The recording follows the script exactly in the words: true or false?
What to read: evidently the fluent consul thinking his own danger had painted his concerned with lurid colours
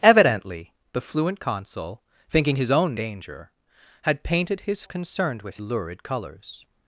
true